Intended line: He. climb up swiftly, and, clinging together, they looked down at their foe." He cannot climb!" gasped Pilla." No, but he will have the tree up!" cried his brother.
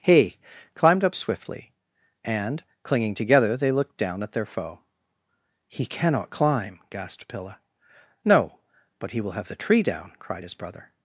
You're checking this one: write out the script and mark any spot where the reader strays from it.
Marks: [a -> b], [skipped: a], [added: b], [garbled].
He. [climb -> climbed] up swiftly, and, clinging together, they looked down at their foe." He cannot climb!" gasped Pilla." No, but he will have the tree [up!" -> down] cried his brother.